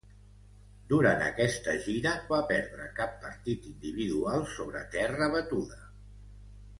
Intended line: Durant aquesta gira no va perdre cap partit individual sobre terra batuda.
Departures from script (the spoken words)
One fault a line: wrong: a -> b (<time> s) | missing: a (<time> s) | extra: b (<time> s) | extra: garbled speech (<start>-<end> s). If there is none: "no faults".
missing: no (2.1 s)